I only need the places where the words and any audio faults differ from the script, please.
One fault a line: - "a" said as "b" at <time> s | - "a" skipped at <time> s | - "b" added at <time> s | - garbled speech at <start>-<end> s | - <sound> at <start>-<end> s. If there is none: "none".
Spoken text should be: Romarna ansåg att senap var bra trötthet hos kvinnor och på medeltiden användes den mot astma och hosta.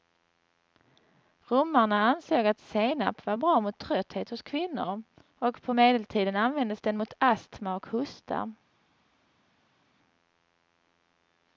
- "mot" added at 3.6 s